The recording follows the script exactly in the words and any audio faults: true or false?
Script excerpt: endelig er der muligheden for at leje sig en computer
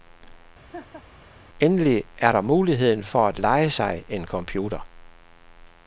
false